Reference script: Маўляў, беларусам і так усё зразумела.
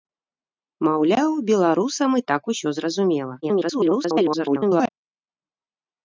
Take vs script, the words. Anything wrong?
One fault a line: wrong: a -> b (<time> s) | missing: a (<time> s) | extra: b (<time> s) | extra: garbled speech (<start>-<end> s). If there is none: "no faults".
extra: garbled speech (3.4-4.9 s)